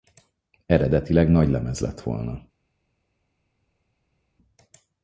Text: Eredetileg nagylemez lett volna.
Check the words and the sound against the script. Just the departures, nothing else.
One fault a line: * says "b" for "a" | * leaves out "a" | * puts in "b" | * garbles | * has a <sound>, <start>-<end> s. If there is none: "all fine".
all fine